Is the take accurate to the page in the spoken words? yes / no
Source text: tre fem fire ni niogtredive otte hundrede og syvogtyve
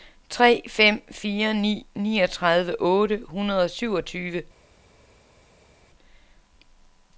yes